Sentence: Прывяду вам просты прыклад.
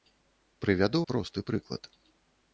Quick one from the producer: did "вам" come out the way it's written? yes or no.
no